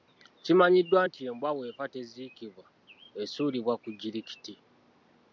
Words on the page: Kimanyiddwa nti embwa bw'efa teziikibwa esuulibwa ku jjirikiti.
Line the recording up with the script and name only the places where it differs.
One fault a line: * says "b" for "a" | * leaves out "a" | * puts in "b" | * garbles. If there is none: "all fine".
all fine